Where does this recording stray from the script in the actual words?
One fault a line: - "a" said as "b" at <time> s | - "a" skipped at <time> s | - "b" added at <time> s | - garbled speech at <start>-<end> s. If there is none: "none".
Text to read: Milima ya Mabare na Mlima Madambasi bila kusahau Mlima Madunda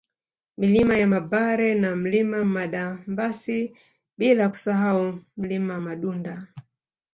none